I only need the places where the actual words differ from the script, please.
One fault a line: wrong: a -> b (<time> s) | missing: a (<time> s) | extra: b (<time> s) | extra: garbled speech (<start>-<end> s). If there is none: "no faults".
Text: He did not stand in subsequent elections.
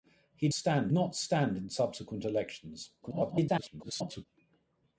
wrong: did -> stand (0.5 s)
extra: garbled speech (3.0-4.3 s)